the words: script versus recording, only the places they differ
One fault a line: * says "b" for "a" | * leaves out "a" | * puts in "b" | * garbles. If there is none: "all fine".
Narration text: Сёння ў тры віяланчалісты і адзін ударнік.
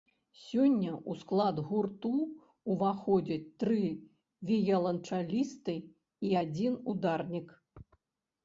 * puts in "склад гурту ўваходзяць"